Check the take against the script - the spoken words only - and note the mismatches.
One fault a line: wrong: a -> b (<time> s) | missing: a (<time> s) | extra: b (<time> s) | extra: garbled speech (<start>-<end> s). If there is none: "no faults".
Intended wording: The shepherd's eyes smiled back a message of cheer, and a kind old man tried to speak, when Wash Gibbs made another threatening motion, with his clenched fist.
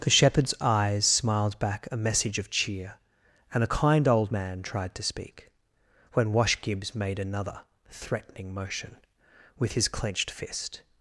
no faults